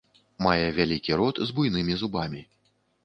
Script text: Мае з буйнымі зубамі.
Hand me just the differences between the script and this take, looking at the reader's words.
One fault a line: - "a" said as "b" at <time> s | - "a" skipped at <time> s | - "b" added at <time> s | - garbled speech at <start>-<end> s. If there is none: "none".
- "вялікі рот" added at 0.8 s